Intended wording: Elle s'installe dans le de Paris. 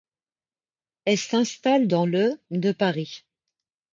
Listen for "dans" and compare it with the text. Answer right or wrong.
right